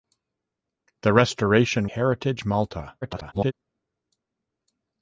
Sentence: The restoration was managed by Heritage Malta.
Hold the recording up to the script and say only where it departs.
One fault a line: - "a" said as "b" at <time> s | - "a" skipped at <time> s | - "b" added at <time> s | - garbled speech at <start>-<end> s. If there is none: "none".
- "was managed by" skipped at 1.9 s
- garbled speech at 3.0-3.5 s